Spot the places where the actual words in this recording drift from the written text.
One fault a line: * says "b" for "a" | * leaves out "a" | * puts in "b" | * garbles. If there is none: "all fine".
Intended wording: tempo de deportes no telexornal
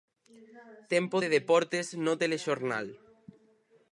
all fine